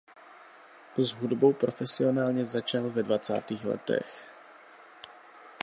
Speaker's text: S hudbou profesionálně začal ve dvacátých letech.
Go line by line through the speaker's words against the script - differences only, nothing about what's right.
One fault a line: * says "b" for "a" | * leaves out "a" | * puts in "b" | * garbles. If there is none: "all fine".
all fine